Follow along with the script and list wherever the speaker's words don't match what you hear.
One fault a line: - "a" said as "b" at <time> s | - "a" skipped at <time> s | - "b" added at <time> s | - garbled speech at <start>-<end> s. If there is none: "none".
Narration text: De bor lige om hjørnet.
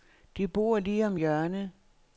none